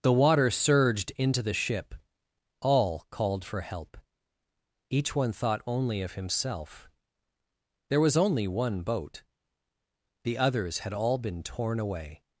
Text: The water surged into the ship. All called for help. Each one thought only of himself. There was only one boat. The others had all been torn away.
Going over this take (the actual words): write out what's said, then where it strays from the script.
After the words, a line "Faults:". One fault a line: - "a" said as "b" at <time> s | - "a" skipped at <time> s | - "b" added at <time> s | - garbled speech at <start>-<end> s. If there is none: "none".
The water surged into the ship. All called for help. Each one thought only of himself. There was only one boat. The others had all been torn away.
Faults:
none